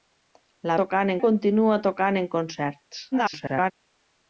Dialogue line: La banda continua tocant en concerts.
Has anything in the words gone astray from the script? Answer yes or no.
yes